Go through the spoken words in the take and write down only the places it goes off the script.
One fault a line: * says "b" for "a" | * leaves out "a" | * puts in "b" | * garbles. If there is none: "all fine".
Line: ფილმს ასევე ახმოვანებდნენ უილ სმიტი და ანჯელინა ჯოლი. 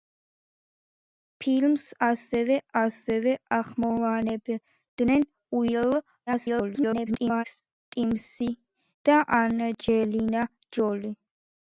* puts in "ასევე"
* garbles